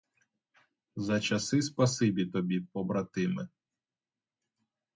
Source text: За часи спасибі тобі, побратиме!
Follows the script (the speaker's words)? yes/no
yes